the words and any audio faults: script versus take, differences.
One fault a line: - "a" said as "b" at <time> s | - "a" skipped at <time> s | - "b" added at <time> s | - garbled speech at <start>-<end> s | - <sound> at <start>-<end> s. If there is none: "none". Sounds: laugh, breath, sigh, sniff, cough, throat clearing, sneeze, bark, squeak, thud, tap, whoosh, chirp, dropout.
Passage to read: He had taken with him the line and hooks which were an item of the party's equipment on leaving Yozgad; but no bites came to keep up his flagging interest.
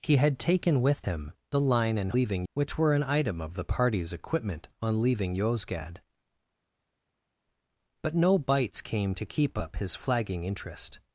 - "hooks" said as "leaving" at 2.1 s